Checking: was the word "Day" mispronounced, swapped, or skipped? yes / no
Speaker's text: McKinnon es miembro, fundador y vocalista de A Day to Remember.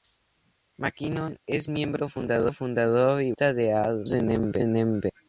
yes